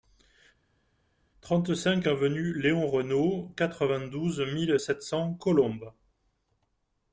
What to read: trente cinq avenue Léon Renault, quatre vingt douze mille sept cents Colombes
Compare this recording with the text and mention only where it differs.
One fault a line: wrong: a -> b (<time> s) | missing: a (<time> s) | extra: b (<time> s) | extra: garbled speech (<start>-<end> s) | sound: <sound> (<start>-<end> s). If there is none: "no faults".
no faults